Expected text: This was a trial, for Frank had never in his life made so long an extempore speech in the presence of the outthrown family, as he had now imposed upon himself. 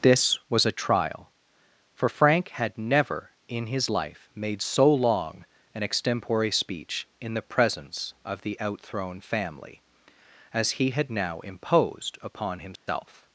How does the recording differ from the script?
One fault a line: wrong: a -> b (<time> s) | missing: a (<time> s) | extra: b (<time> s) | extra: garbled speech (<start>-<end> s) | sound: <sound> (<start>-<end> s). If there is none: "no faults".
sound: dropout (12.8-12.9 s)